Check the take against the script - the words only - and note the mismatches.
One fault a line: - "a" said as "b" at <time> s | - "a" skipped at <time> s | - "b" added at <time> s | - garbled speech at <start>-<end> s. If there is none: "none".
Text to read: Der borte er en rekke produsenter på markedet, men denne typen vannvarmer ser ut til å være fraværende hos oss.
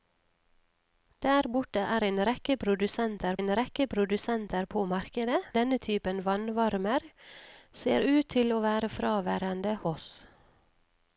- "en rekke produsenter" added at 3.4 s
- "men" skipped at 5.4 s
- "hos" skipped at 9.8 s